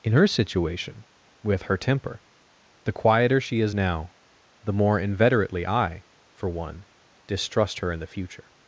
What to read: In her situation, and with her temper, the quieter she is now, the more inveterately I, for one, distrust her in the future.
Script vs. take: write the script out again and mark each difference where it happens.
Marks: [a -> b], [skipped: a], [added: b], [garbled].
In her situation, [skipped: and] with her temper, the quieter she is now, the more inveterately I, for one, distrust her in the future.